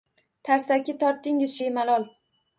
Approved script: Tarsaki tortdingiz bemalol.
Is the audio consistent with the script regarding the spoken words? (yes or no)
yes